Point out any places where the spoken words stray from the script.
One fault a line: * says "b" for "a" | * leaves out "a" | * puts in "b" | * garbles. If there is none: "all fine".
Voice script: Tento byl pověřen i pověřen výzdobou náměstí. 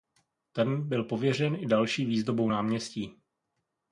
* says "Ten" for "Tento"
* says "další" for "pověřen"